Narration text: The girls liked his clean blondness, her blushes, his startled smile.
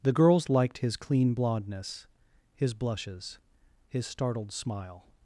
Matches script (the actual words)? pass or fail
fail